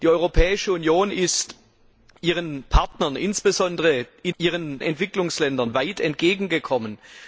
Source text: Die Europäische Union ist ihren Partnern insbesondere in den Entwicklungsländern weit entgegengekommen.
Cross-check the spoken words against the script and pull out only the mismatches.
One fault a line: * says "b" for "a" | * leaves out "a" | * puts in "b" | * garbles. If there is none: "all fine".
* says "ihren" for "den"